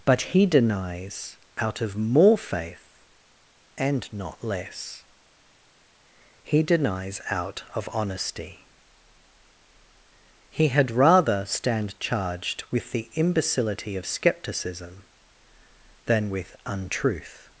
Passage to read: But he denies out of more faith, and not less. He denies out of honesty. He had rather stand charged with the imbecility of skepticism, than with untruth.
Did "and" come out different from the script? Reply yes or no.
no